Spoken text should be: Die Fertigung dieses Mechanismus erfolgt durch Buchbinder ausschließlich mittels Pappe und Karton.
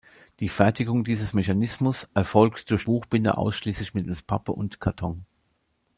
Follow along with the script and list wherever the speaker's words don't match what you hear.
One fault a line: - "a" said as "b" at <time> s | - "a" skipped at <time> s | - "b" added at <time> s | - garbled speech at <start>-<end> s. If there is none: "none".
none